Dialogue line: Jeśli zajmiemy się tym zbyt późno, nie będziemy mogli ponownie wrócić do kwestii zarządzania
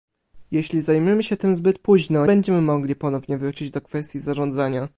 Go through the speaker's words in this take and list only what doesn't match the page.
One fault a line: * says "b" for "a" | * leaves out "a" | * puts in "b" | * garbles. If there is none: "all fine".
* leaves out "nie"